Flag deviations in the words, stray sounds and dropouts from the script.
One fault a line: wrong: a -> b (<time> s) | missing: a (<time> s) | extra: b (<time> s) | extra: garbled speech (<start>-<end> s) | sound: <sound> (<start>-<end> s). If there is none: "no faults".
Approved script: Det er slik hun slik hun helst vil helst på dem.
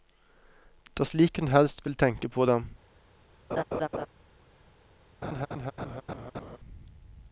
missing: slik hun (1.5 s)
wrong: helst -> tenke (2.0 s)
sound: laugh (3.5-4.1 s)
sound: laugh (5.2-6.6 s)